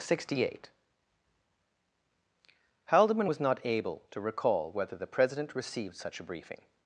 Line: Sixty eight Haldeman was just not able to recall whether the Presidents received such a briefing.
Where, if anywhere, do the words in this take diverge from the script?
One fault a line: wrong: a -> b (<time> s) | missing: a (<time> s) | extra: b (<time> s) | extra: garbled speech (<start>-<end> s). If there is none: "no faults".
missing: just (3.4 s)
wrong: Presidents -> President (5.1 s)